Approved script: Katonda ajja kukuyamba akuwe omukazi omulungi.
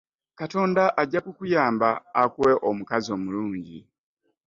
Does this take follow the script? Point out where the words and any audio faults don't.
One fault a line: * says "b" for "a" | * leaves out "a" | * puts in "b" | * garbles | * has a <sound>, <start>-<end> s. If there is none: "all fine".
all fine